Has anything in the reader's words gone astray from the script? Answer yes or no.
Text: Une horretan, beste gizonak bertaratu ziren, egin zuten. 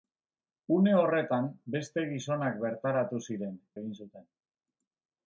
no